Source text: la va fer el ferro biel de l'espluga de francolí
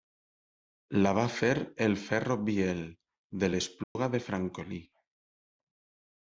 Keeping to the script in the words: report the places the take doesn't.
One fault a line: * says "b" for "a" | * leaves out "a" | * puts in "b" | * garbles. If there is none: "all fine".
all fine